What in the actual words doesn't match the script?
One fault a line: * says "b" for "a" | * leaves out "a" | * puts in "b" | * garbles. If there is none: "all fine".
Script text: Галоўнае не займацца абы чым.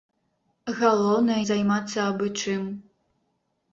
* leaves out "не"